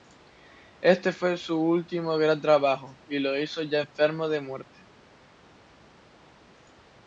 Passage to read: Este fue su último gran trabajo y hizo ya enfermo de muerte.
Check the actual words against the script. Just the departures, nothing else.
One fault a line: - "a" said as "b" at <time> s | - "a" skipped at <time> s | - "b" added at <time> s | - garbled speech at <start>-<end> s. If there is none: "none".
- "lo" added at 3.2 s